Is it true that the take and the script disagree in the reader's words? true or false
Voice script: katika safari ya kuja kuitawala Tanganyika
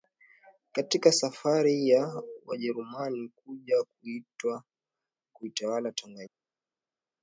true